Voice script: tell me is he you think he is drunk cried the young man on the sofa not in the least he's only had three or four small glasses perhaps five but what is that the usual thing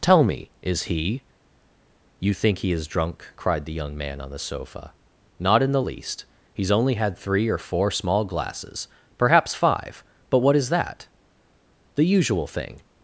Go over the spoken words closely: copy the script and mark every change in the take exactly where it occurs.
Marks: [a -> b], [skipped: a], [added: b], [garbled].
tell me is he you think he is drunk cried the young man on the sofa not in the least he's only had three or four small glasses perhaps five but what is that the usual thing